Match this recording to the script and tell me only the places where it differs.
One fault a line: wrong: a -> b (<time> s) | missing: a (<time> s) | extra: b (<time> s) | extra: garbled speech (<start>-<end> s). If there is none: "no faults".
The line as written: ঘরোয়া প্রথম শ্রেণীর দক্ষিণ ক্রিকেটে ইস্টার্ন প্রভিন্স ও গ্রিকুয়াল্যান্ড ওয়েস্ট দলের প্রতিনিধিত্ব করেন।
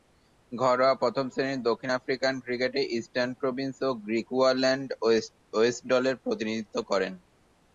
extra: আফ্রিকান (1.9 s)